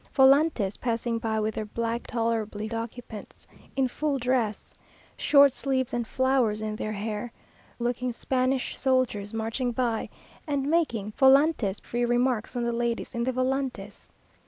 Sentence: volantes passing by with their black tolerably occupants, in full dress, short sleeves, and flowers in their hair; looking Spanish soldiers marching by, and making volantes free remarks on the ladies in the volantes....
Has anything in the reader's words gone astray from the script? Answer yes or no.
no